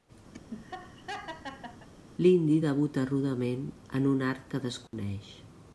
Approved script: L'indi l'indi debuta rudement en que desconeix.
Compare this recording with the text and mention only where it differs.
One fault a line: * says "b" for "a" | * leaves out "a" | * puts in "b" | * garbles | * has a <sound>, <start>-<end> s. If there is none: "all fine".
* has a laugh, 0.3-1.9 s
* leaves out "l'indi"
* puts in "un art"
* has a dropout, 4.9-4.9 s